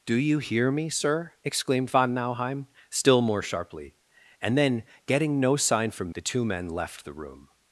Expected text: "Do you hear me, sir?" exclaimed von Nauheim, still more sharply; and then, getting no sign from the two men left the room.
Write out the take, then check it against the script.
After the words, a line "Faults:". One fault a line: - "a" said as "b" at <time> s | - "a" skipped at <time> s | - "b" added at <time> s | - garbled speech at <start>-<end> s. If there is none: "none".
"Do you hear me, sir?" exclaimed von Nauheim, still more sharply; and then, getting no sign from the two men left the room.
Faults:
none